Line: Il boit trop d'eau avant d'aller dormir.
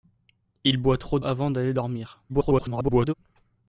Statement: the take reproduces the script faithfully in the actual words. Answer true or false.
false